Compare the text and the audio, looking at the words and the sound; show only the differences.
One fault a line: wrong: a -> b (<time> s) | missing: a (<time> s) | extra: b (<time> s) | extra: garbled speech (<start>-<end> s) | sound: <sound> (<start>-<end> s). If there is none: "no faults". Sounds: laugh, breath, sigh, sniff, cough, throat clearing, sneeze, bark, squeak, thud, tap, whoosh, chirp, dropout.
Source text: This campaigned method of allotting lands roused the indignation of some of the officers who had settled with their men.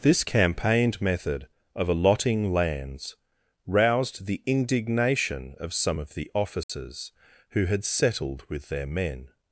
sound: dropout (6.6-6.7 s)